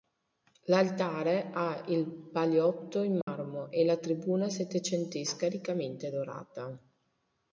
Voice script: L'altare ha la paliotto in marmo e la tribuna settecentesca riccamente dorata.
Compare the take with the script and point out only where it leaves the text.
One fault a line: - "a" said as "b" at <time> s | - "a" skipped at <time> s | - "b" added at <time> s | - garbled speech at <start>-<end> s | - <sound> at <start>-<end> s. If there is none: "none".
- "la" said as "il" at 1.9 s
- dropout at 3.2-3.3 s